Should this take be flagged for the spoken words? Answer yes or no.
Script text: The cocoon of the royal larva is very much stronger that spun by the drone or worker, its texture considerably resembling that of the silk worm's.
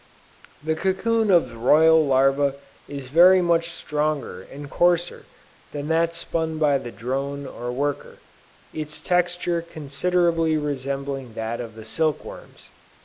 yes